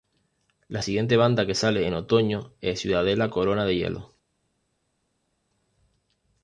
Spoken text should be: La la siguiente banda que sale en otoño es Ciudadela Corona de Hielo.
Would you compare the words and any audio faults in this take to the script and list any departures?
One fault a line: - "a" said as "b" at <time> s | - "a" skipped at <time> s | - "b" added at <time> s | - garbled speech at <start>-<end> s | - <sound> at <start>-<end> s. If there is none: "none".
- "la" skipped at 0.8 s